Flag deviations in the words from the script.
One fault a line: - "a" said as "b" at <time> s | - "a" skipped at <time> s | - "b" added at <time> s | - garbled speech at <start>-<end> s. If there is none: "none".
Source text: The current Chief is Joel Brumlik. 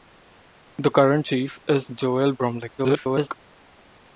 - garbled speech at 2.8-3.3 s